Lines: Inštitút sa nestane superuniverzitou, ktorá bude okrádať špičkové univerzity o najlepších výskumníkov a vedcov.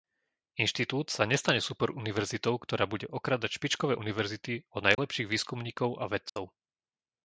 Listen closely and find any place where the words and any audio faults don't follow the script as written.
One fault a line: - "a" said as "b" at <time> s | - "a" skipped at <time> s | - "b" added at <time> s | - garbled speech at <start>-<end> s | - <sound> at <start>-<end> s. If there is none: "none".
- dropout at 4.9-5.0 s
- dropout at 6.3-6.4 s